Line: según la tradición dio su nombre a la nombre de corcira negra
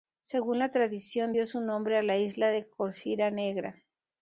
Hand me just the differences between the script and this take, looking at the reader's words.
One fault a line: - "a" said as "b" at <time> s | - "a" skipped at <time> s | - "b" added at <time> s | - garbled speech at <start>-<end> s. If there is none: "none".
- "nombre" said as "isla" at 2.2 s